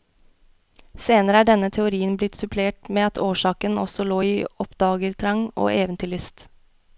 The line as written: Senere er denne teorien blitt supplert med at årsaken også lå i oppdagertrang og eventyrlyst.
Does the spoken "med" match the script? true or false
true